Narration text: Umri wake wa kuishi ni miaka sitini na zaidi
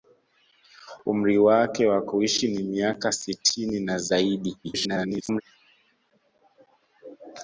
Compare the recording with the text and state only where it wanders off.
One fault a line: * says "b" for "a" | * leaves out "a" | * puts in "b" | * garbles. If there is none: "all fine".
* garbles